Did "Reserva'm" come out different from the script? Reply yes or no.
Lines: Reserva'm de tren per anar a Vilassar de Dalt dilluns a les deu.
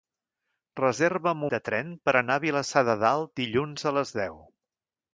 no